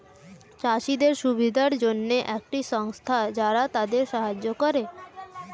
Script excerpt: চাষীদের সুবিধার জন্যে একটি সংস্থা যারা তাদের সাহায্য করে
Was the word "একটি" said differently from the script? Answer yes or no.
no